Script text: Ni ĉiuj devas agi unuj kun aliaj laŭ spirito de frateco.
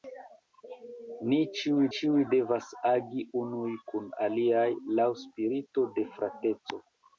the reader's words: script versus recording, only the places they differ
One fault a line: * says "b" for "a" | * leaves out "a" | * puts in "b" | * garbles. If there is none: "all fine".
* puts in "ĉiuj"